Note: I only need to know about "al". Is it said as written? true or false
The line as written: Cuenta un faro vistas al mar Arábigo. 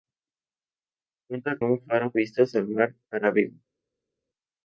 true